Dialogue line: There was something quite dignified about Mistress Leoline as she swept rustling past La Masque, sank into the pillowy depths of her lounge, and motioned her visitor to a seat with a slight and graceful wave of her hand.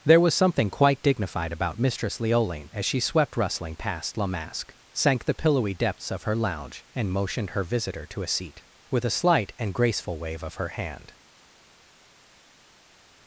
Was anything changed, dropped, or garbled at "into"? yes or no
yes